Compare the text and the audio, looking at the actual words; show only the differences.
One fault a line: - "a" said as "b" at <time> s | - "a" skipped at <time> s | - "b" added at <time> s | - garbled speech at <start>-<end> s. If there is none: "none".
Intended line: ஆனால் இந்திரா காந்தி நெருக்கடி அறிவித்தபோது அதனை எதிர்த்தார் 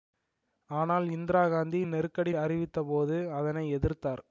none